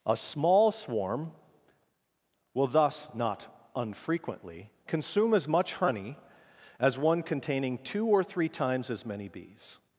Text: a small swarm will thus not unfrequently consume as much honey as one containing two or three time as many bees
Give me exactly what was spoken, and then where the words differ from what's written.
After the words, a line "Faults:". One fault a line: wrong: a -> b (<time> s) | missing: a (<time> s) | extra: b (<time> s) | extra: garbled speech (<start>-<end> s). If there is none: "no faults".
a small swarm will thus not unfrequently consume as much honey as one containing two or three times as many bees
Faults:
wrong: time -> times (8.5 s)